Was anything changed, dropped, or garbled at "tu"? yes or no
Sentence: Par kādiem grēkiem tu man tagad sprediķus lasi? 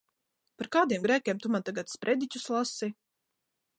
no